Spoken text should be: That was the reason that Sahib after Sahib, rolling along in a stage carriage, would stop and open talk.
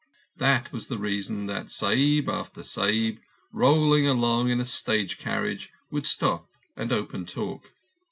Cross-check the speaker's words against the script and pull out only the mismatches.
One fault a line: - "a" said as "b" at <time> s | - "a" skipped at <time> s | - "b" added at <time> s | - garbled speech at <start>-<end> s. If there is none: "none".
none